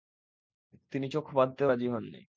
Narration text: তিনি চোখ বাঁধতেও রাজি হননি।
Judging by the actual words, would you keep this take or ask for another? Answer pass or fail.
pass